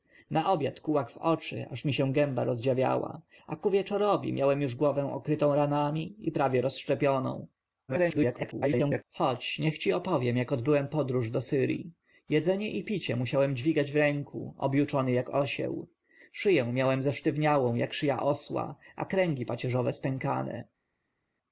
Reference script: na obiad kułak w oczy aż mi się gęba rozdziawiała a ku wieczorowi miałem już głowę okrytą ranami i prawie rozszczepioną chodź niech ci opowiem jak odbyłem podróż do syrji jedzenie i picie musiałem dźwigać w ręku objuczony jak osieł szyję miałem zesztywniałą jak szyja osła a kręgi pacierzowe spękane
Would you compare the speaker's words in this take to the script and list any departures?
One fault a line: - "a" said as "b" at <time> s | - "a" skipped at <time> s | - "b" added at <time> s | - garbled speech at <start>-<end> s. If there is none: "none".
- garbled speech at 7.9-9.0 s